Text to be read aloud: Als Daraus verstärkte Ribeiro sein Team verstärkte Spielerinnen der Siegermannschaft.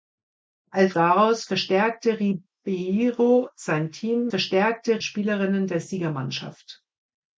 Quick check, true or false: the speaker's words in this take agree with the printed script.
true